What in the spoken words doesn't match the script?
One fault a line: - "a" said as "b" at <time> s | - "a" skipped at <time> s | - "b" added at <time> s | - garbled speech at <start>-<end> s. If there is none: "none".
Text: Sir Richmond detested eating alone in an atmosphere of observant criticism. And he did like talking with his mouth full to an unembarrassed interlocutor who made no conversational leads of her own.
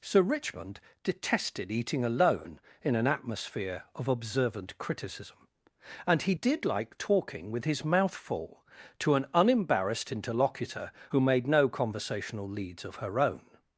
none